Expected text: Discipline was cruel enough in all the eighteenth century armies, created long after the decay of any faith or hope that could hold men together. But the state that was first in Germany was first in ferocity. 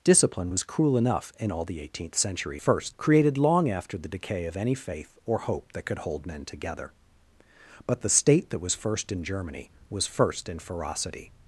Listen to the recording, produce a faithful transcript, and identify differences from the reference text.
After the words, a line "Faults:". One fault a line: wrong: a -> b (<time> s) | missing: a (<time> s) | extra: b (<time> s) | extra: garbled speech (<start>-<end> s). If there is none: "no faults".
Discipline was cruel enough in all the eighteenth century first, created long after the decay of any faith or hope that could hold men together. But the state that was first in Germany was first in ferocity.
Faults:
wrong: armies -> first (2.6 s)